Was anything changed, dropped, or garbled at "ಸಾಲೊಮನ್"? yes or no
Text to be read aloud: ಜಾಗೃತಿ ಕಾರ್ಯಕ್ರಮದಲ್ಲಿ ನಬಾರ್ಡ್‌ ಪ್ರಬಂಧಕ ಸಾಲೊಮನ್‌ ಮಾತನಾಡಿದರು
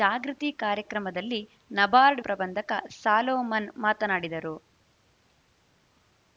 no